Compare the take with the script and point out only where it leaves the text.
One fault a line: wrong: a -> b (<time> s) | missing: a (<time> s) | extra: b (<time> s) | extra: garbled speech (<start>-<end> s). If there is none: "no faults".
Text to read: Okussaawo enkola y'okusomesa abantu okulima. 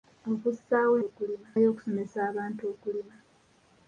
wrong: enkola -> okulima (1.1 s)